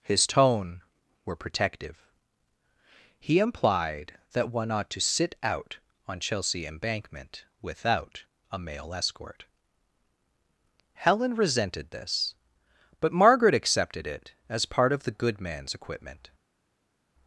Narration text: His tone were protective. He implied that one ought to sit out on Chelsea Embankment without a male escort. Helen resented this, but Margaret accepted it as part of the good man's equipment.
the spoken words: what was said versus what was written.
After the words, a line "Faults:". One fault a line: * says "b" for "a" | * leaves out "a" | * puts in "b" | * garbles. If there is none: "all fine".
His tone were protective. He implied that one ought to sit out on Chelsea Embankment without a male escort. Helen resented this, but Margaret accepted it as part of the good man's equipment.
Faults:
all fine